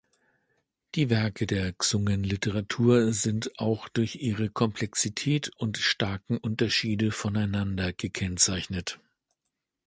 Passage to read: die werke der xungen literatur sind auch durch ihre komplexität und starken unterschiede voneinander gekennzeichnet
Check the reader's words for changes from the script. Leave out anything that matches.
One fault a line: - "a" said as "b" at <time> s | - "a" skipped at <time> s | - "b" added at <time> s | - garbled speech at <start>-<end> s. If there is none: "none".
none